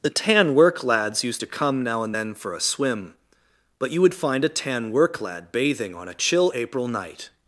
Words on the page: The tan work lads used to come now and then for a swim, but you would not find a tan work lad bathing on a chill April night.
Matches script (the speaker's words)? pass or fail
fail